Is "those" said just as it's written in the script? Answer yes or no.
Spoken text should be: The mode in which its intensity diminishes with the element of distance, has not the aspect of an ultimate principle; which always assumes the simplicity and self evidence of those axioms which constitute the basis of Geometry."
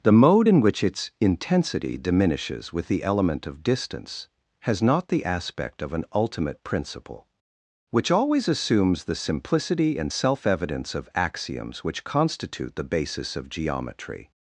no